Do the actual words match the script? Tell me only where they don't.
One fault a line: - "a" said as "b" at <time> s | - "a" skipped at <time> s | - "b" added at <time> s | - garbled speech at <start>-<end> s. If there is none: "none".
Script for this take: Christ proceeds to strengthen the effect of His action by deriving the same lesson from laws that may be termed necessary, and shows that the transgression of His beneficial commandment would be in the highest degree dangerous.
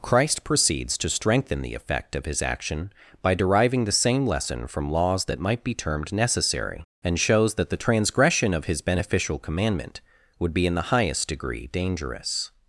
- "may" said as "might" at 5.4 s